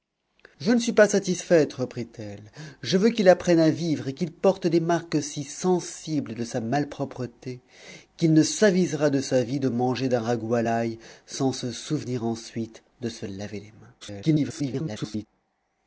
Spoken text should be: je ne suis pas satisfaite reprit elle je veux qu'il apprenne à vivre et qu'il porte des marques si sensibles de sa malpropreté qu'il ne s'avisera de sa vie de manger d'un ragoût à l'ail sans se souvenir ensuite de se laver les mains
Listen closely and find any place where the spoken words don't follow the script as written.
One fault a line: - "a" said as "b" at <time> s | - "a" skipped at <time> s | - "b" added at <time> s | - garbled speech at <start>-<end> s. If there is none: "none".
- garbled speech at 14.0-15.3 s